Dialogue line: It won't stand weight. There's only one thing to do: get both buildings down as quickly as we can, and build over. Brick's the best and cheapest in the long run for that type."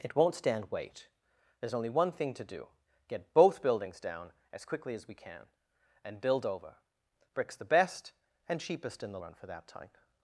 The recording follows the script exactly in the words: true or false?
false